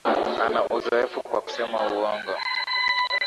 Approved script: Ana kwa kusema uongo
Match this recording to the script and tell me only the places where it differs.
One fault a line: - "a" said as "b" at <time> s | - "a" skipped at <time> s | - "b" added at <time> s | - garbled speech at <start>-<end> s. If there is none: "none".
- "uzoefu" added at 0.7 s